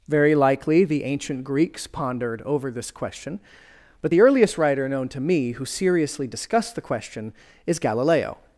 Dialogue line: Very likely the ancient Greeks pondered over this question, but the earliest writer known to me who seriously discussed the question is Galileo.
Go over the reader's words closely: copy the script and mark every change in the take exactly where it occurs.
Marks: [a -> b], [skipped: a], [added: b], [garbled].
Very likely the ancient Greeks pondered over this question, but the earliest writer known to me who seriously discussed the question is Galileo.